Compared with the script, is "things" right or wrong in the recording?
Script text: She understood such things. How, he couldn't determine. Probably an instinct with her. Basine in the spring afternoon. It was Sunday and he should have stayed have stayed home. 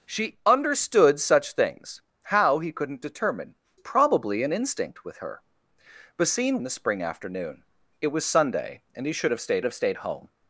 right